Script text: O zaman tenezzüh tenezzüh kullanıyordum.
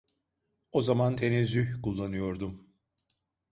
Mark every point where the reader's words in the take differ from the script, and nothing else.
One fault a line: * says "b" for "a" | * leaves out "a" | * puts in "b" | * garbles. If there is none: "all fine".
* leaves out "tenezzüh"